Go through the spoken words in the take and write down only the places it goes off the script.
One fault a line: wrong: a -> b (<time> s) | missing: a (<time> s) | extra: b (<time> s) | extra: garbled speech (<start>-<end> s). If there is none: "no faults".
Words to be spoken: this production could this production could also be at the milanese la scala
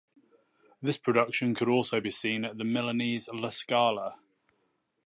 missing: this production could (1.7 s)
extra: seen (2.1 s)